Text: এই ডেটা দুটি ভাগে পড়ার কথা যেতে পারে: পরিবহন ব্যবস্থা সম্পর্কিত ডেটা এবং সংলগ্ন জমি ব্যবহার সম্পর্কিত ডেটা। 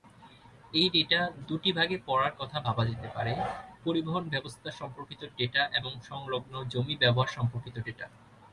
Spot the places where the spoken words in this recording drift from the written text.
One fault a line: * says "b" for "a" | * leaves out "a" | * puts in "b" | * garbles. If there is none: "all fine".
* puts in "ভাবা"